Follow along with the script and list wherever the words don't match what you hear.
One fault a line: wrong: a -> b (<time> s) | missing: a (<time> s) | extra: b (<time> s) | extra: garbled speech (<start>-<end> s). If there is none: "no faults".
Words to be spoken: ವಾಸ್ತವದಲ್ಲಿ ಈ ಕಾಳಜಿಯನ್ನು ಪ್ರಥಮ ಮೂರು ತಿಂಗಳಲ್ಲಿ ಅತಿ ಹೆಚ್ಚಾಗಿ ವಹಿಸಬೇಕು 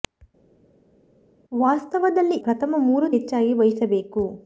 missing: ಈ ಕಾಳಜಿಯನ್ನು (2.4 s)
missing: ತಿಂಗಳಲ್ಲಿ ಅತಿ (3.1 s)